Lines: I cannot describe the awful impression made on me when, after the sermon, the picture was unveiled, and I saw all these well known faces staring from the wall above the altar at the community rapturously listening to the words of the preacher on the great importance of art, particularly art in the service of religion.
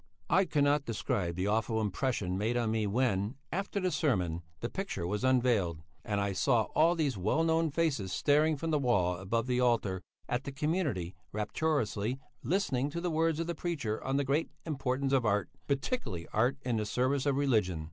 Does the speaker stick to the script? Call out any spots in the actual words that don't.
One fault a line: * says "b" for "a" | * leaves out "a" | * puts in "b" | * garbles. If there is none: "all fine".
all fine